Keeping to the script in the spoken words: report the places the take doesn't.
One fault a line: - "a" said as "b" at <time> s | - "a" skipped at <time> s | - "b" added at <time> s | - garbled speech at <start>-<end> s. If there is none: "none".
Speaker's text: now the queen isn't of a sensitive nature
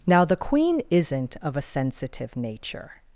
none